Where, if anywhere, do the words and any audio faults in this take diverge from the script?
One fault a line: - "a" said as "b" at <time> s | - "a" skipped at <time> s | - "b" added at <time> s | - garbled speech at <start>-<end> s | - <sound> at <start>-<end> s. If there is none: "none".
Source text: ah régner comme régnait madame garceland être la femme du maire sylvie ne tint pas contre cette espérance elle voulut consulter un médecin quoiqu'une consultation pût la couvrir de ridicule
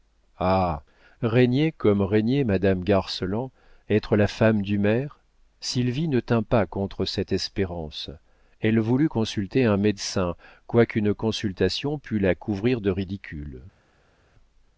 none